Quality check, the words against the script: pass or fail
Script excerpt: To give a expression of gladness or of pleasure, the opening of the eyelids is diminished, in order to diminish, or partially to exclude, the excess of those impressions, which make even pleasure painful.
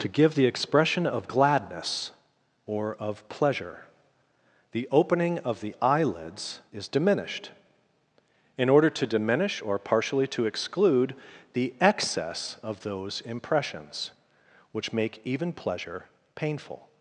fail